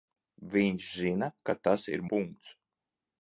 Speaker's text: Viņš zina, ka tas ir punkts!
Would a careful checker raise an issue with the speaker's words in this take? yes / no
no